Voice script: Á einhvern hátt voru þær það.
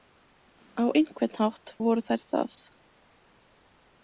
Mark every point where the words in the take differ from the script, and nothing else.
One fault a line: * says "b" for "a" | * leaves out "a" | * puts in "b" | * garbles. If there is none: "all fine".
all fine